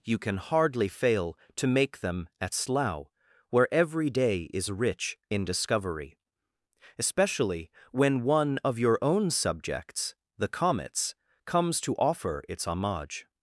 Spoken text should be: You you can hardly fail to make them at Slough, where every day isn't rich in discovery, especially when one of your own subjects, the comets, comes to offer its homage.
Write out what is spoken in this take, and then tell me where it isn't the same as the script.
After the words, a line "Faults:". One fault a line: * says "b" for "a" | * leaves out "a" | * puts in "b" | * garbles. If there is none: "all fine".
You can hardly fail to make them at Slough, where every day is rich in discovery, especially when one of your own subjects, the comets, comes to offer its homage.
Faults:
* leaves out "you"
* says "is" for "isn't"